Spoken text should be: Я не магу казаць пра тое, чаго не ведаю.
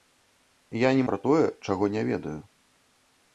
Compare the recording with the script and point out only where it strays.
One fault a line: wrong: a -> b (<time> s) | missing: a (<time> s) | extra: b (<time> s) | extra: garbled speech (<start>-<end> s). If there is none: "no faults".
missing: магу казаць (1.0 s)